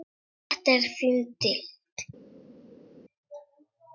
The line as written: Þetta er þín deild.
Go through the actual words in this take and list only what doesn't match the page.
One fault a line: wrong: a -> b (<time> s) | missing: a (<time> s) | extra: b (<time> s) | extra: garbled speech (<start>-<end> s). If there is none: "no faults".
no faults